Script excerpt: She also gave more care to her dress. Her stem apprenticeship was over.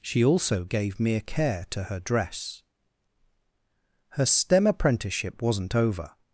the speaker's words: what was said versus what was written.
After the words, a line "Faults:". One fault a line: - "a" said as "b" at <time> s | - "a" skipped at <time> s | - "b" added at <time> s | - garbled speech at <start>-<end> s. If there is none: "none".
She also gave mere care to her dress. Her stem apprenticeship wasn't over.
Faults:
- "more" said as "mere" at 1.0 s
- "was" said as "wasn't" at 5.4 s